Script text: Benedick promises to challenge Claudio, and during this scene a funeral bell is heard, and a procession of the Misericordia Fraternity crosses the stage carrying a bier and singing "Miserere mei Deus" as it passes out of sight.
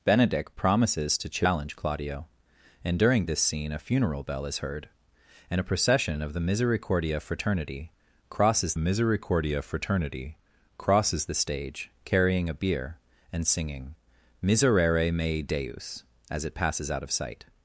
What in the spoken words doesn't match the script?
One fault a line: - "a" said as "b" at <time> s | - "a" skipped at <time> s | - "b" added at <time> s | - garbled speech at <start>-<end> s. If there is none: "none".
- "Misericordia Fraternity crosses" added at 8.8 s